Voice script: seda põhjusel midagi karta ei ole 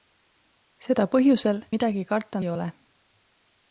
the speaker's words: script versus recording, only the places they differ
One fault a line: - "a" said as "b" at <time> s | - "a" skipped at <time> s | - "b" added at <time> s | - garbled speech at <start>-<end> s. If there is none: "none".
none